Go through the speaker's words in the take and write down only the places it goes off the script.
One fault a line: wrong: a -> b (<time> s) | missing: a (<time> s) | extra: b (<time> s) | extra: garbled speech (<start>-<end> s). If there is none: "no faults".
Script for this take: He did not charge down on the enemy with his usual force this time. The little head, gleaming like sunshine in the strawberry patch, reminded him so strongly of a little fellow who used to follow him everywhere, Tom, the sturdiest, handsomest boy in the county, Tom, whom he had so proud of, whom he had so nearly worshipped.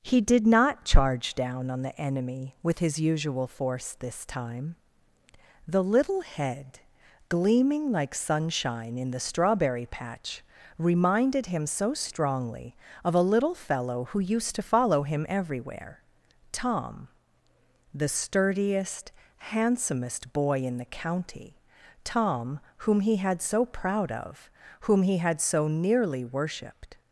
no faults